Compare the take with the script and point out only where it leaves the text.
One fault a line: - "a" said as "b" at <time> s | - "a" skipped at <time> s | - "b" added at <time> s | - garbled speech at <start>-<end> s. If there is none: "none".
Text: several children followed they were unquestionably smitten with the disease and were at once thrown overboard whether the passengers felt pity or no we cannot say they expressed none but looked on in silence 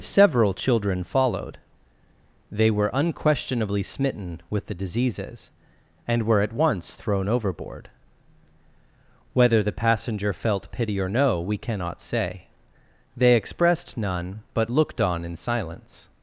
- "disease" said as "diseases" at 4.7 s
- "passengers" said as "passenger" at 9.7 s